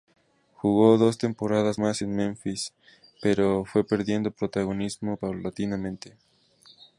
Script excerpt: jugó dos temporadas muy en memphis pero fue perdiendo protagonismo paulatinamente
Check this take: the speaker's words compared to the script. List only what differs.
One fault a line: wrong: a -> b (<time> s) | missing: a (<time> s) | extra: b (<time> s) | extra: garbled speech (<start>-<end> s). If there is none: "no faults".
wrong: muy -> más (1.8 s)